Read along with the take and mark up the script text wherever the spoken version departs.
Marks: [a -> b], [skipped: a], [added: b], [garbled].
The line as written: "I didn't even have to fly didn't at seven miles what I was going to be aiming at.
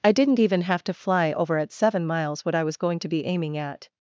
"I didn't even have to fly [didn't -> over] at seven miles what I was going to be aiming at.